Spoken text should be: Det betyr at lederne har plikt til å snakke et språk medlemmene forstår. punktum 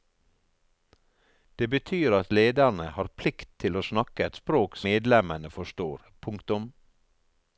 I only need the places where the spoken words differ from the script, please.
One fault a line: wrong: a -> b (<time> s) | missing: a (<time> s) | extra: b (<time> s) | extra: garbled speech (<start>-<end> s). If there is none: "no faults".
no faults